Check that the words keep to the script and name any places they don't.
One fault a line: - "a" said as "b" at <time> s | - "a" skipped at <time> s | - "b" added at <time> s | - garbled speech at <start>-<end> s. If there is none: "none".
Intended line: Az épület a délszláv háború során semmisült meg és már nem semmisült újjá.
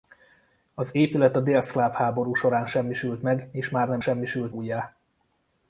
none